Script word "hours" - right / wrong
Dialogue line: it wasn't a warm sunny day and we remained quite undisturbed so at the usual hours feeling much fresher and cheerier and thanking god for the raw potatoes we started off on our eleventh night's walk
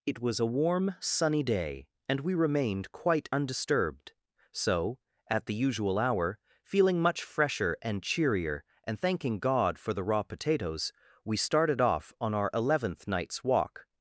wrong